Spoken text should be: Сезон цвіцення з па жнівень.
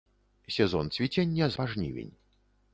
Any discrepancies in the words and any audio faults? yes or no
no